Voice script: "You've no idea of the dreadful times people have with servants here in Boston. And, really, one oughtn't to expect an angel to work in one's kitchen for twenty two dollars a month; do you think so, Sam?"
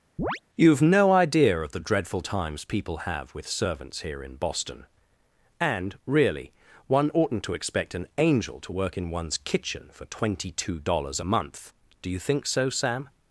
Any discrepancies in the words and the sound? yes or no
yes